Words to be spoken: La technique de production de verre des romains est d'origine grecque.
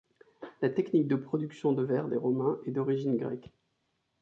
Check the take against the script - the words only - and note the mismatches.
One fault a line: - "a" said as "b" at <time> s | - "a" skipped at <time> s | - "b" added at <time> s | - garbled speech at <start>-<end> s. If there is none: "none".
none